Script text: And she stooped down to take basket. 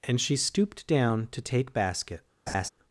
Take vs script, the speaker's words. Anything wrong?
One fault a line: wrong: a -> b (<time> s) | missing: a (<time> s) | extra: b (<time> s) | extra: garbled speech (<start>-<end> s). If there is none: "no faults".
no faults